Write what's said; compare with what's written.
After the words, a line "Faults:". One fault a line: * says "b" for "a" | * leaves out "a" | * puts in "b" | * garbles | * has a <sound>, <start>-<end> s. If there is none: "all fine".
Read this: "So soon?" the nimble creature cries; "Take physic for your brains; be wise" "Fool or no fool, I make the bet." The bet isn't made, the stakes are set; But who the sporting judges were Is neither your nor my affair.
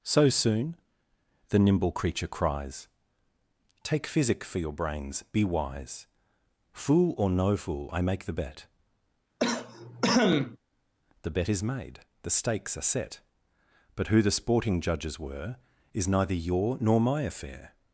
"So soon?" the nimble creature cries; "Take physic for your brains; be wise" "Fool or no fool, I make the bet." The bet is made, the stakes are set; But who the sporting judges were Is neither your nor my affair.
Faults:
* has a cough, 9.4-10.6 s
* says "is" for "isn't"